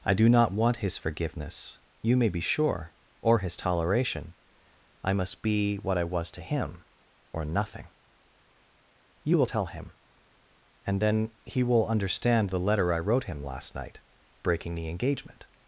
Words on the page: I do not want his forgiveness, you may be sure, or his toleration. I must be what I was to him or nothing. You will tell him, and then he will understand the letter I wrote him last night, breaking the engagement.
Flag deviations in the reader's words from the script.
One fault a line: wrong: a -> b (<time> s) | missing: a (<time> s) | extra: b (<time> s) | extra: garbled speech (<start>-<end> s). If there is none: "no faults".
no faults